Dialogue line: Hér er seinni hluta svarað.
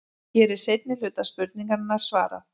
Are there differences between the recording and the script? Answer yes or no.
yes